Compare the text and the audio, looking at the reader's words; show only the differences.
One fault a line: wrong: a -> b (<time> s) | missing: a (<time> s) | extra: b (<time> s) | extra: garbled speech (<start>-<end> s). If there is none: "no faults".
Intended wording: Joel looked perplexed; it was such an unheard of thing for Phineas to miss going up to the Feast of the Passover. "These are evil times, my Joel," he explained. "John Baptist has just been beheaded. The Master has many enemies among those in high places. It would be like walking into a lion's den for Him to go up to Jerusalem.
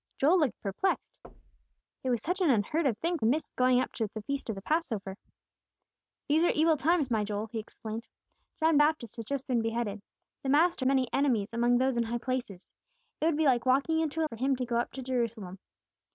missing: for Phineas to (3.2 s)
missing: has (10.9 s)
missing: lion's den (14.3 s)